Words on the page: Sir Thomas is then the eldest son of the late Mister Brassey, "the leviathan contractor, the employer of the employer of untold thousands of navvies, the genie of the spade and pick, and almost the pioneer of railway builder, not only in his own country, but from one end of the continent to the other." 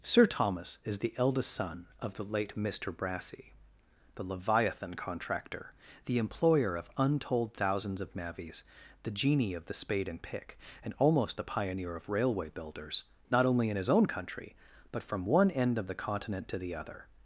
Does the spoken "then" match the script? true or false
false